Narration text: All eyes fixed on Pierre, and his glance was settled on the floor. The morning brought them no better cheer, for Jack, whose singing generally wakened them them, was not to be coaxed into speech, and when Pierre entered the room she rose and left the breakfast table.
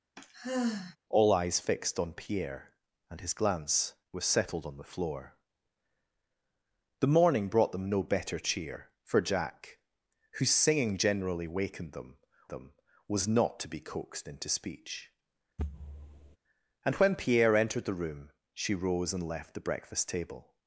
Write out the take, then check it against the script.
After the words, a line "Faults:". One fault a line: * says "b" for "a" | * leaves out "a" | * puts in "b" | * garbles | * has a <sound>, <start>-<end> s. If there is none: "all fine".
All eyes fixed on Pierre, and his glance was settled on the floor. The morning brought them no better cheer, for Jack, whose singing generally wakened them them, was not to be coaxed into speech, and when Pierre entered the room she rose and left the breakfast table.
Faults:
* has a sigh, 0.2-1.0 s
* has a thud, 15.6-16.4 s